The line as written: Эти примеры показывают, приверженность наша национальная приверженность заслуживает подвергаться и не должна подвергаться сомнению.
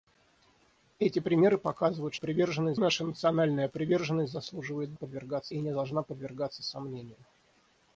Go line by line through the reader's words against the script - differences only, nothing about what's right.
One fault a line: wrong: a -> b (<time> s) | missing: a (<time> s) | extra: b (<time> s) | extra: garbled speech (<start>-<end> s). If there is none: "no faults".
no faults